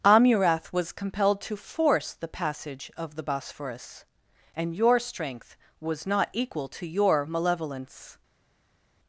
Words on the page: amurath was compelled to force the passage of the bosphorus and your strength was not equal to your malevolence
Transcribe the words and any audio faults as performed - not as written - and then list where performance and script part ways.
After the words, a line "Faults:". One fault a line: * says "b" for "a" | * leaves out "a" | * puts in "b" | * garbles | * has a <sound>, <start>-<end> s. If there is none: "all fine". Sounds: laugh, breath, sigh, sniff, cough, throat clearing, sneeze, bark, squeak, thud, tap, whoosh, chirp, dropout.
amurath was compelled to force the passage of the bosphorus and your strength was not equal to your malevolence
Faults:
all fine